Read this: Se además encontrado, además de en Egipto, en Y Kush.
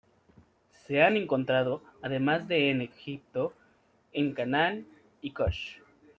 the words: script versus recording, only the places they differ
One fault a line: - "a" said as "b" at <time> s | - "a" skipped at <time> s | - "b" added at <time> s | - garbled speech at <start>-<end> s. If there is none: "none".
- "además" said as "han" at 1.0 s
- "Canaán" added at 4.3 s